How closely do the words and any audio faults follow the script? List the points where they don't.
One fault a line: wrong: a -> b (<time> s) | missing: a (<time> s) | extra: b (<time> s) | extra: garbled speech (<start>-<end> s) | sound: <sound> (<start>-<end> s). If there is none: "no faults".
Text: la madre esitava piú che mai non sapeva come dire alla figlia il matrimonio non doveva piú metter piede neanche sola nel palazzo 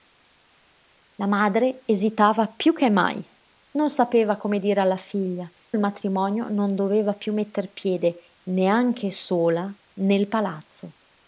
no faults